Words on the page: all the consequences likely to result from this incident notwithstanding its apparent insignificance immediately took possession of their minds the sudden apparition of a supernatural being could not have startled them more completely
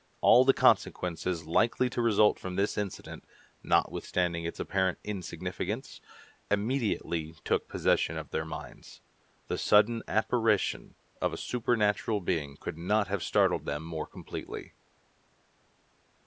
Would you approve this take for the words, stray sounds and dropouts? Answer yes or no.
yes